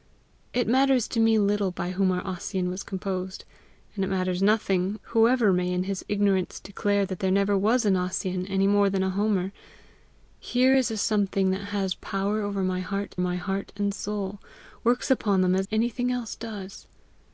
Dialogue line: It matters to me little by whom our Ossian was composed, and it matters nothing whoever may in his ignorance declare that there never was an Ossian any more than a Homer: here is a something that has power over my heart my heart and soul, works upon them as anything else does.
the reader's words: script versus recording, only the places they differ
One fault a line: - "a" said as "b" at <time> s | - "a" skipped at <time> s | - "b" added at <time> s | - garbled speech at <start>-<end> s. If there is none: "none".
none